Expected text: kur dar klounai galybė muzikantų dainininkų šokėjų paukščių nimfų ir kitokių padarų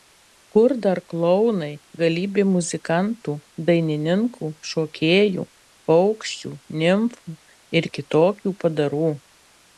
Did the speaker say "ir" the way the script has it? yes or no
yes